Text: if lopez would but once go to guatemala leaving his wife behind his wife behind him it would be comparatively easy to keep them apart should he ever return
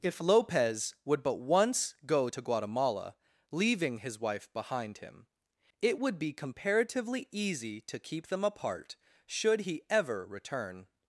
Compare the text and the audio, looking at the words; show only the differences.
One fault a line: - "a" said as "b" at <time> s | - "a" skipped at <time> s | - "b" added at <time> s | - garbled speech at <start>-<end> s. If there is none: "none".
- "his wife behind" skipped at 5.0 s